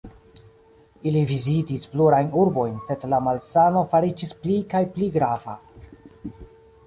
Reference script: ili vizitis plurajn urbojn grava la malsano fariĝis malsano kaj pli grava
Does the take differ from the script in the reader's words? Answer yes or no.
yes